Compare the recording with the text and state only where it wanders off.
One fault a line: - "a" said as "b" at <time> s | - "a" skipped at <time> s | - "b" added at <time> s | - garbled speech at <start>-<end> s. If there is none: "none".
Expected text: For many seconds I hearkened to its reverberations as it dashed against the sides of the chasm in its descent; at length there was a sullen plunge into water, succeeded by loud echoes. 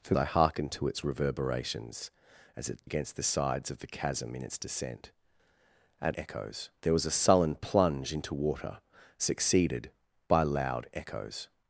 - "many seconds" skipped at 0.1 s
- "dashed" skipped at 2.9 s
- "length" said as "echoes" at 6.1 s